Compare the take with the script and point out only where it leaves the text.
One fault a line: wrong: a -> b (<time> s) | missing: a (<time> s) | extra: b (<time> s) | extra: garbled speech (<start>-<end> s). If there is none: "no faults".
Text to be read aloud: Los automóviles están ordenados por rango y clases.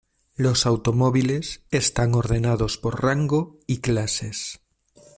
no faults